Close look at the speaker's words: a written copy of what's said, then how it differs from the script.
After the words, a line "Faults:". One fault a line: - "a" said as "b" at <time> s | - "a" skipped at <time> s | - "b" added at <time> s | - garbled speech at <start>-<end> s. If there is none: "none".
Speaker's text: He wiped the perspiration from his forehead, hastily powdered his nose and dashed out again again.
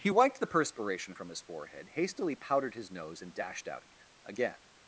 He wiped the perspiration from his forehead, hastily powdered his nose and dashed out again again.
Faults:
none